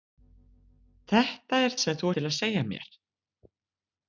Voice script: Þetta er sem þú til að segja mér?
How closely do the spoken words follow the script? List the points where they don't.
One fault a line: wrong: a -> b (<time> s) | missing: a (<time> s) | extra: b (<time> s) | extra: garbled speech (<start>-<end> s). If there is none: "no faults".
no faults